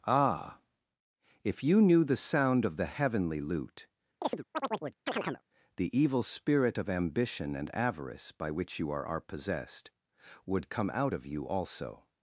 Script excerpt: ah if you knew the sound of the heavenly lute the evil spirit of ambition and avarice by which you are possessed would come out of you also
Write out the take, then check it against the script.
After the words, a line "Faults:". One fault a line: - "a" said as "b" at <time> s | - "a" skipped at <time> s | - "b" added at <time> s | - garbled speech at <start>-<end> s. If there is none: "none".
ah if you knew the sound of the heavenly lute the evil spirit of ambition and avarice by which you are are possessed would come out of you also
Faults:
- "are" added at 9.1 s